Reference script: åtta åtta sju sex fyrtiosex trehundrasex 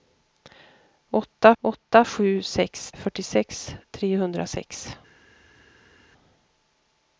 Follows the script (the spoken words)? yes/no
yes